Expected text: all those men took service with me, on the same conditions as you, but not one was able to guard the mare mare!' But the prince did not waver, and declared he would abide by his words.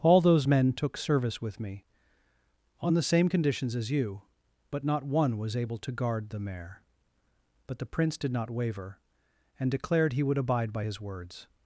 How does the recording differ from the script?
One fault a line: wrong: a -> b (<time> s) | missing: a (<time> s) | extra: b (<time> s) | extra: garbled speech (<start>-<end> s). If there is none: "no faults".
missing: mare (6.8 s)